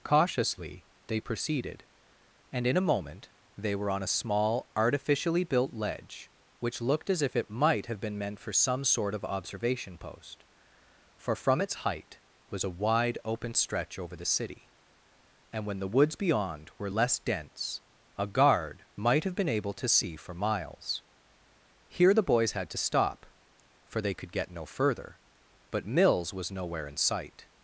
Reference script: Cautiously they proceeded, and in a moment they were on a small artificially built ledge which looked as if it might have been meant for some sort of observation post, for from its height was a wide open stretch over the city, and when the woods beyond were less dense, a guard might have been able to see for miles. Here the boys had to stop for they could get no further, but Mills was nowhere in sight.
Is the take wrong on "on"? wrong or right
right